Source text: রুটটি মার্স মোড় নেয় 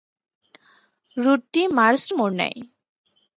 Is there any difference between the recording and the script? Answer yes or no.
no